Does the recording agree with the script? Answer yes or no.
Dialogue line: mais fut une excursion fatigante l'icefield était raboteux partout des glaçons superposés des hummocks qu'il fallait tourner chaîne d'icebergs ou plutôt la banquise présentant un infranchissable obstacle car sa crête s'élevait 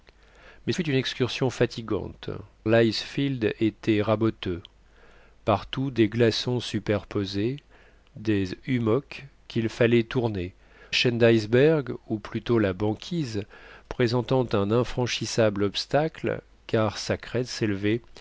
yes